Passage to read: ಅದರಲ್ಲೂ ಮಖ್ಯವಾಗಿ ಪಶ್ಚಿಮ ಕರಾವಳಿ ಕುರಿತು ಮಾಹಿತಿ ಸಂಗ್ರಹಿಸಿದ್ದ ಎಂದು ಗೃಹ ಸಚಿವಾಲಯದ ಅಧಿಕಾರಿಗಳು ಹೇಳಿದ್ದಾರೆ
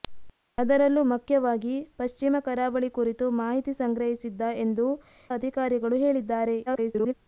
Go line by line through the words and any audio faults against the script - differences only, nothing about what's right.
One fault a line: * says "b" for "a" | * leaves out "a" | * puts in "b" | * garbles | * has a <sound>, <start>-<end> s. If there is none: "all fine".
* leaves out "ಗೃಹ ಸಚಿವಾಲಯದ"
* garbles